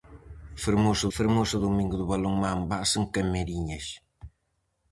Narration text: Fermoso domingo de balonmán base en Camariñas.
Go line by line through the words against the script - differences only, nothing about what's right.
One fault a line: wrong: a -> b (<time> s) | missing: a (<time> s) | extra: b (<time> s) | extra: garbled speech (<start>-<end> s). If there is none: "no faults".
extra: fermoso (1.2 s)